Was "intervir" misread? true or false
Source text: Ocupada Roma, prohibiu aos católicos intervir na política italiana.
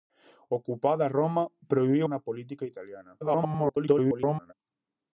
true